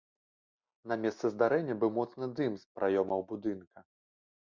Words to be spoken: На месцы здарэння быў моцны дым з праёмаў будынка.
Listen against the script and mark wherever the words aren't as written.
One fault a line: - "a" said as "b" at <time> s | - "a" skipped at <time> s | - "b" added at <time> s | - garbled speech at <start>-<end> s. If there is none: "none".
none